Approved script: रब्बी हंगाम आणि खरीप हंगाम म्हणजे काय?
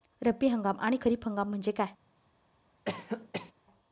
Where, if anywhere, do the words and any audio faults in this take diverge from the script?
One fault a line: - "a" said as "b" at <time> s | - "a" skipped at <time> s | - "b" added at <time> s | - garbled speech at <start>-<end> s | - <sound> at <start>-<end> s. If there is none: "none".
- cough at 2.9-3.5 s